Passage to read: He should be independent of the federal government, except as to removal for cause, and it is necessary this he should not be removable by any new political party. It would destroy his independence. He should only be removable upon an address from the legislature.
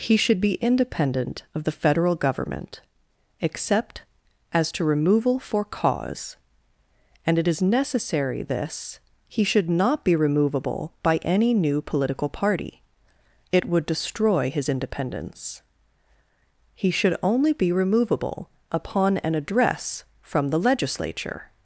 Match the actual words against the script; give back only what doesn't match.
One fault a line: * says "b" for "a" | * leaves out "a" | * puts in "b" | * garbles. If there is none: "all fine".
all fine